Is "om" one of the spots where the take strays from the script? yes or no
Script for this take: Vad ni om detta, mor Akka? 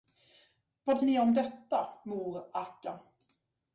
no